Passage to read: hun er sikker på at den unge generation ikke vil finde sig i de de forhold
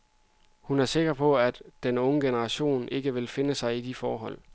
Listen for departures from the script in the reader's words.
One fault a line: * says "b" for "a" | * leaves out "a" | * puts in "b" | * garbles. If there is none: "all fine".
* leaves out "de"